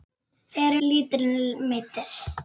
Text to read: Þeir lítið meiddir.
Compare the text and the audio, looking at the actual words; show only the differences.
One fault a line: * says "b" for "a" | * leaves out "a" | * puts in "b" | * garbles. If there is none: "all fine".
all fine